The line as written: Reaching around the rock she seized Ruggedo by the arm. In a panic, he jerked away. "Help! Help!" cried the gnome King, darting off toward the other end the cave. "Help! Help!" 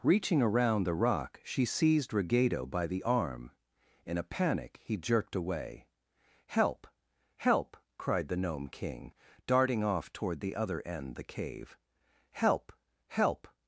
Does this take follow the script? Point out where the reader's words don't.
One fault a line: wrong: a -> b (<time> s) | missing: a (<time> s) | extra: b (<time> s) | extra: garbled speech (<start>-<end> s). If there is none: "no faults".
no faults